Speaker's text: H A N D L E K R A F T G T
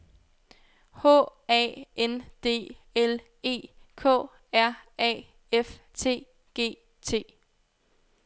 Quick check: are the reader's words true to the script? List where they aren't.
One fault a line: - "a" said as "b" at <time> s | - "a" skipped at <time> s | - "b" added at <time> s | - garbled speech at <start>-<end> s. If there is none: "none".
none